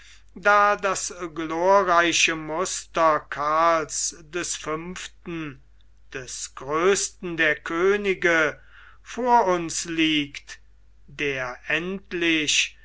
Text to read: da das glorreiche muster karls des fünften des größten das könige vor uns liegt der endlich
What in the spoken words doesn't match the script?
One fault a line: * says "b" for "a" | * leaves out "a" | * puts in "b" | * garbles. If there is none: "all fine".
* says "der" for "das"